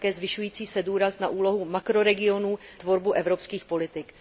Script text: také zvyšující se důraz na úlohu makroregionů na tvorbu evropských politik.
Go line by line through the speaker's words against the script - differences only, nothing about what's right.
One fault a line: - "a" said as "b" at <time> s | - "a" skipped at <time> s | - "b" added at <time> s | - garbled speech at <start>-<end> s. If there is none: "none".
- "na" skipped at 2.6 s